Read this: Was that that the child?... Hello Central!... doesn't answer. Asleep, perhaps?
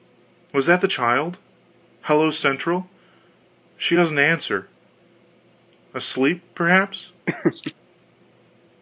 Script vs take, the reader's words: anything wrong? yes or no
yes